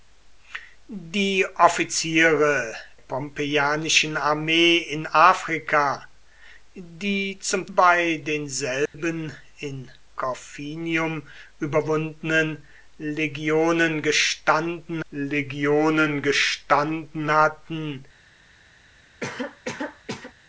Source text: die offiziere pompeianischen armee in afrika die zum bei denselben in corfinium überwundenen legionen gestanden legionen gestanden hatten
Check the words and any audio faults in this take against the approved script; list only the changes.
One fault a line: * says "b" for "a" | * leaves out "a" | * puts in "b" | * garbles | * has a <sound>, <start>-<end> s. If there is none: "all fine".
* has a dropout, 8.9-8.9 s
* has a cough, 19.2-20.3 s